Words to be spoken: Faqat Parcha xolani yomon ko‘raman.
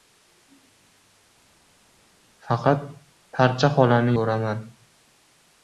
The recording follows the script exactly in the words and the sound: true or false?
false